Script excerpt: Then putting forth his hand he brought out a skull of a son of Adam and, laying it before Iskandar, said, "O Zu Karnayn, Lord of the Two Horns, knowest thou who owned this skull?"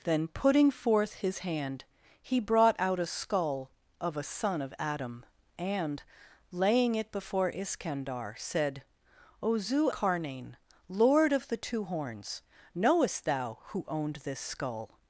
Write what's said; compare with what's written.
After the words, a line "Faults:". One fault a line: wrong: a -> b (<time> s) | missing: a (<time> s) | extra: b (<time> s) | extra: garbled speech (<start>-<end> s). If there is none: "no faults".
Then putting forth his hand he brought out a skull of a son of Adam and, laying it before Iskandar, said, "O Zu Karnayn, Lord of the Two Horns, knowest thou who owned this skull?"
Faults:
no faults